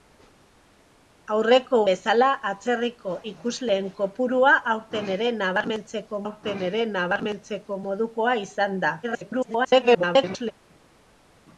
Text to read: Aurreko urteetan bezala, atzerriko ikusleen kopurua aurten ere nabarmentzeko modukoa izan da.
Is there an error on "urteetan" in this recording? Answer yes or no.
yes